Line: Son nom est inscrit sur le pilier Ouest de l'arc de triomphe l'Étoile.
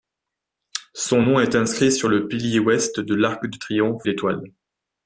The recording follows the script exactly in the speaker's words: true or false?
true